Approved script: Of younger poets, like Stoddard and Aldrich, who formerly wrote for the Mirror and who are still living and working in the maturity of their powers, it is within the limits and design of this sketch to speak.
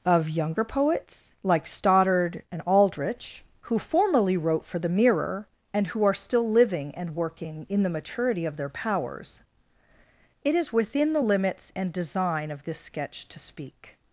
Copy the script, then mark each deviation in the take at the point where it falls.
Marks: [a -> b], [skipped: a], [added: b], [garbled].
Of younger poets, like Stoddard and Aldrich, who formerly wrote for the Mirror and who are still living and working in the maturity of their powers, it is within the limits and design of this sketch to speak.